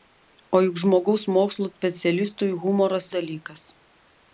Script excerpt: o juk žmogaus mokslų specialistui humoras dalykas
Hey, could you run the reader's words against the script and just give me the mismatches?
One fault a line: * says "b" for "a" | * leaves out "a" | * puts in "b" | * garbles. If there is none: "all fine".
all fine